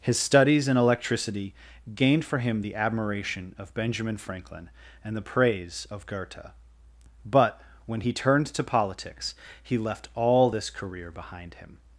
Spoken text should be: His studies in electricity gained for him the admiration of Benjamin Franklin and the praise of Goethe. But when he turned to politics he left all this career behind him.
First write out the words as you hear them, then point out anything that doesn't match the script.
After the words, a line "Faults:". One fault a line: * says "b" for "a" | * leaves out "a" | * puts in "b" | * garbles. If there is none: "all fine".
His studies in electricity gained for him the admiration of Benjamin Franklin and the praise of Goethe. But when he turned to politics he left all this career behind him.
Faults:
all fine